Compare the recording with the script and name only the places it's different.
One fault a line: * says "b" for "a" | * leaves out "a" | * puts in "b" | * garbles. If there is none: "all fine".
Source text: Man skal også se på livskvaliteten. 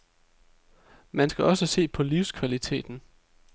all fine